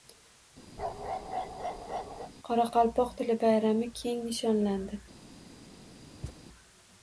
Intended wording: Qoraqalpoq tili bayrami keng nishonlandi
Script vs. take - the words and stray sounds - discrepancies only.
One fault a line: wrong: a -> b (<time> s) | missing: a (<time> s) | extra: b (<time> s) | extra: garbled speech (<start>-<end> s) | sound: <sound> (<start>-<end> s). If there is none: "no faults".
sound: bark (0.8-2.3 s)
sound: thud (6.2-6.4 s)